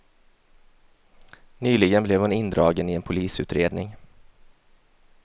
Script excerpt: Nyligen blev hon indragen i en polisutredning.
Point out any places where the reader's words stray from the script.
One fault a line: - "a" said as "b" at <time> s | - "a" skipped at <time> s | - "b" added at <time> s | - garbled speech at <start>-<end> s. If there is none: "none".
none